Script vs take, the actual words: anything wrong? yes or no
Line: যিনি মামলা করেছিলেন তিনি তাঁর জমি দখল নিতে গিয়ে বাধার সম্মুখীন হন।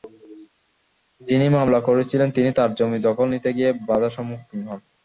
no